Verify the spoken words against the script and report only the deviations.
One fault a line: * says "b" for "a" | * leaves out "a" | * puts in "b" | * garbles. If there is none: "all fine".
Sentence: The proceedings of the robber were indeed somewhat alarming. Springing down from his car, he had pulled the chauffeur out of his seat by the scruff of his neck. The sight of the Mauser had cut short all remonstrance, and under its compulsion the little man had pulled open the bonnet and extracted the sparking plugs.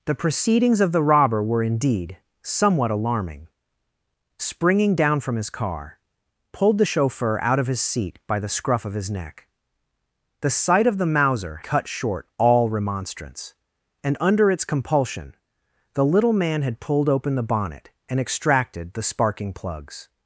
* leaves out "he had"
* leaves out "had"